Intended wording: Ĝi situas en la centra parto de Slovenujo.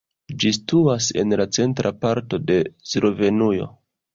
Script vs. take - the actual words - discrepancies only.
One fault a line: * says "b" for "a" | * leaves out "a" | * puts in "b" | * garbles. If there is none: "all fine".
all fine